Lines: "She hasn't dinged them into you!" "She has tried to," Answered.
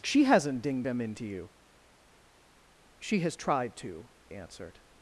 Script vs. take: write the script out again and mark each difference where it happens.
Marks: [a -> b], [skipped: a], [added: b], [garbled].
"She hasn't dinged them into you!" "She has tried to," Answered.